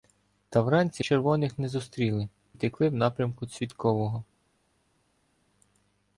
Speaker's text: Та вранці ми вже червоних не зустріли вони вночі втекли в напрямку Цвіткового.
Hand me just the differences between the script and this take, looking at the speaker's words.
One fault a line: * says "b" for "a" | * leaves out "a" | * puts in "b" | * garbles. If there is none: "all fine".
* leaves out "ми вже"
* leaves out "вони вночі"